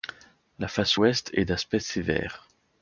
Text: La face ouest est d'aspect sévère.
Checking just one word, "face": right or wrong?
right